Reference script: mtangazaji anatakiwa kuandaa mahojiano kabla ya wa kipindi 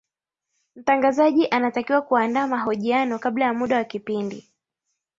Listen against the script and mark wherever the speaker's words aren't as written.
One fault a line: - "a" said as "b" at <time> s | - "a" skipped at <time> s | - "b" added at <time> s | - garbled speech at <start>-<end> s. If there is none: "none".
- "muda" added at 3.5 s